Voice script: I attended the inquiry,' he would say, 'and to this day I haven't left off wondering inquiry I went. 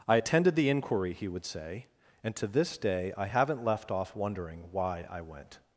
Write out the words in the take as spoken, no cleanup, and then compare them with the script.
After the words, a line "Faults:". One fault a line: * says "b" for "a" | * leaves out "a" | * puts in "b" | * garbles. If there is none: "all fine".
I attended the inquiry,' he would say, 'and to this day I haven't left off wondering why I went.
Faults:
* says "why" for "inquiry"